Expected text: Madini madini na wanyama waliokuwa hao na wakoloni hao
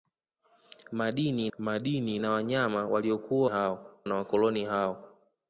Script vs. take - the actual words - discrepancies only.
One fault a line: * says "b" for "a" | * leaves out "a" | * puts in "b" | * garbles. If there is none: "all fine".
all fine